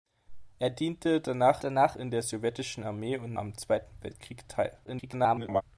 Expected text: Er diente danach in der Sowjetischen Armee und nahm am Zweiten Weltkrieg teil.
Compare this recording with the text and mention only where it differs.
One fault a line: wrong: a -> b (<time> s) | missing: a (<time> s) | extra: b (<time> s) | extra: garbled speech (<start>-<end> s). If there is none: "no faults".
extra: danach (1.6 s)
missing: nahm (3.4 s)
extra: garbled speech (4.9-5.6 s)